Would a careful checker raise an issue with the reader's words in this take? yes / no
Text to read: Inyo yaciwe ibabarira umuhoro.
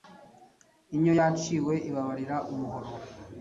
no